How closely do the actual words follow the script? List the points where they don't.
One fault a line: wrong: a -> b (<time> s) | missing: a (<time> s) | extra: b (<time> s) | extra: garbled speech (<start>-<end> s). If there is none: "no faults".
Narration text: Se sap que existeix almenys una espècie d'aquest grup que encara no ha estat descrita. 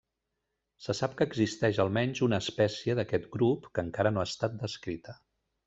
no faults